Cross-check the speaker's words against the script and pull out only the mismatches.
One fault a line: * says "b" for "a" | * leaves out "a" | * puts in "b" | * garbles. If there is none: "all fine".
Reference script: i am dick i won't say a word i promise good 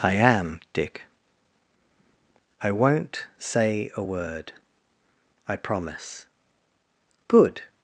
all fine